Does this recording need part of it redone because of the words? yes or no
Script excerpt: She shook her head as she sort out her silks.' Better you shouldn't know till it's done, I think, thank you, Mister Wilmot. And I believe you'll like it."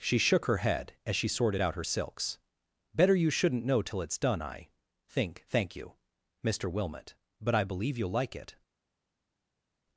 yes